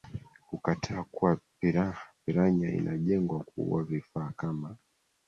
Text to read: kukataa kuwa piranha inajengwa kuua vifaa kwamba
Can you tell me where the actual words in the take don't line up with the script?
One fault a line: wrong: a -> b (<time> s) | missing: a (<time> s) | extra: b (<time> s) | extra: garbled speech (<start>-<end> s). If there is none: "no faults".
wrong: kwamba -> kama (4.4 s)